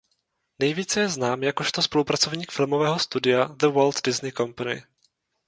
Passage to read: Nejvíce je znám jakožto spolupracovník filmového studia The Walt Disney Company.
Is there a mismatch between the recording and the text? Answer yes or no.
no